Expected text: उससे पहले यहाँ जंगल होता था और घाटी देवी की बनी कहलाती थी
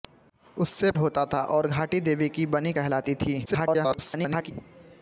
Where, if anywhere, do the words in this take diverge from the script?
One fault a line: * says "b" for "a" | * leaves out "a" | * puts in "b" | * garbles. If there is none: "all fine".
* leaves out "पहले यहाँ जंगल"
* garbles